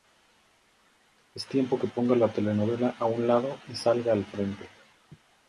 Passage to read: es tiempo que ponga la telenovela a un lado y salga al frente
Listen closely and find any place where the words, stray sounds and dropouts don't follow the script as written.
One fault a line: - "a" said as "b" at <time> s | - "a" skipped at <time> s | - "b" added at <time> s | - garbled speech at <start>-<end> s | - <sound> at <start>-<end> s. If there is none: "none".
none